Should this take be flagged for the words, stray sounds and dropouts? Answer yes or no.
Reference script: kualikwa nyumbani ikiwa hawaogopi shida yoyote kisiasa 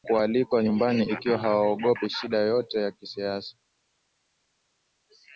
yes